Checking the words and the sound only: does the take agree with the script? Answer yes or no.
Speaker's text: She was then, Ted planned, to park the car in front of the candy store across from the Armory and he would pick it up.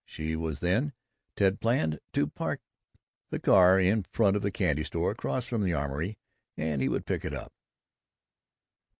yes